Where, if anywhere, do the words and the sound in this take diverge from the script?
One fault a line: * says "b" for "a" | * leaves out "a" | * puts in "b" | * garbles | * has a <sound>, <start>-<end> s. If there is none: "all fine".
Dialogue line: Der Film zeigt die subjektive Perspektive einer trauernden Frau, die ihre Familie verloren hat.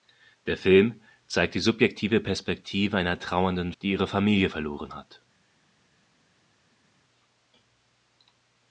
* leaves out "Frau"